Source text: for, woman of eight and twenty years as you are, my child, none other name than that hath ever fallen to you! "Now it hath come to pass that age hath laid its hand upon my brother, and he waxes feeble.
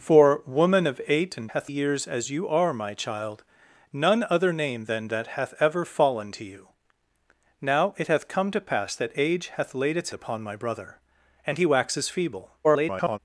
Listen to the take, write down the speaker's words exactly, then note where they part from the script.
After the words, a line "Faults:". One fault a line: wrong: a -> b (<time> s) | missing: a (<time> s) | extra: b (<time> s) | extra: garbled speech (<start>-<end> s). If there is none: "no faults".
for, woman of eight and hath years as you are, my child, none other name than that hath ever fallen to you! "Now it hath come to pass that age hath laid its upon my brother, and he waxes feeble. [garbled]
Faults:
wrong: twenty -> hath (1.5 s)
missing: hand (10.1 s)
extra: garbled speech (12.6-13.2 s)